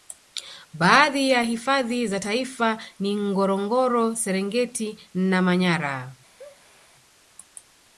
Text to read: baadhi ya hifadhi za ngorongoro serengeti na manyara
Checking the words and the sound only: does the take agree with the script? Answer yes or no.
no